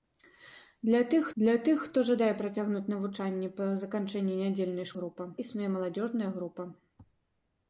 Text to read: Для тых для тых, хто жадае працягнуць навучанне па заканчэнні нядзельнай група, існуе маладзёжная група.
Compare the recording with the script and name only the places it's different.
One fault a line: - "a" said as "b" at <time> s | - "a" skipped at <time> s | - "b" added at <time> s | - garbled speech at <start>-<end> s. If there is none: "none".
none